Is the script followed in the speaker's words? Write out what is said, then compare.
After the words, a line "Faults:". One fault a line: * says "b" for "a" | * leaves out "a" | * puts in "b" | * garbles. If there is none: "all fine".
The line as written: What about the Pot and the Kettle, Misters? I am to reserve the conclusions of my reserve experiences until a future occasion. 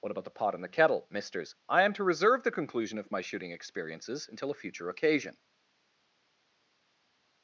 What about the Pot and the Kettle, Misters? I am to reserve the conclusion of my shooting experiences until a future occasion.
Faults:
* says "conclusion" for "conclusions"
* says "shooting" for "reserve"